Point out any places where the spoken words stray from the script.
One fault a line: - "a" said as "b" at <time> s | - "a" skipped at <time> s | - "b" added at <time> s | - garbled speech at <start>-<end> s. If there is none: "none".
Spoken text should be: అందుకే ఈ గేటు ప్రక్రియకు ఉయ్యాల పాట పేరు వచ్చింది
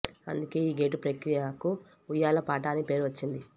- "అని" added at 2.7 s